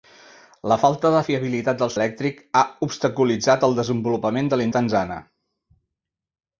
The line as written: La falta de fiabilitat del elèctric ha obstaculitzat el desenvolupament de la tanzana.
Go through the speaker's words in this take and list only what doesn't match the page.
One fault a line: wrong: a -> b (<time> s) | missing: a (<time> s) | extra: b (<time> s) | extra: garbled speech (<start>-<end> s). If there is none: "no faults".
no faults